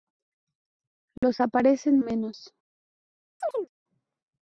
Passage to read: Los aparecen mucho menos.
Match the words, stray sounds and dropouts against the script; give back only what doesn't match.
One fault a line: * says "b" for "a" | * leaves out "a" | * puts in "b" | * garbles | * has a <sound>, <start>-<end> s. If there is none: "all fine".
* has a dropout, 1.2-1.2 s
* leaves out "mucho"
* has a chirp, 3.4-3.7 s